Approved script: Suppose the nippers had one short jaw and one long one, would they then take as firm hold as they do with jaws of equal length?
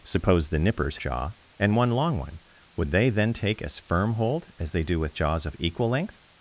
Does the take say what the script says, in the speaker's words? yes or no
no